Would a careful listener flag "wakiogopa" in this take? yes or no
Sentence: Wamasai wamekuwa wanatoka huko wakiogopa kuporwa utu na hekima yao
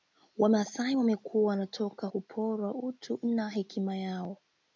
yes